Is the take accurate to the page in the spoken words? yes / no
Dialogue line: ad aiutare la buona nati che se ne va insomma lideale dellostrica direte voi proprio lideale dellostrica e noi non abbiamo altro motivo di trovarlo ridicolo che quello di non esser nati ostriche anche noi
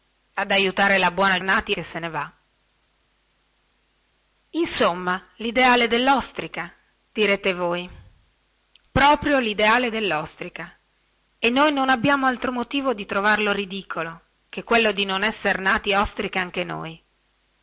yes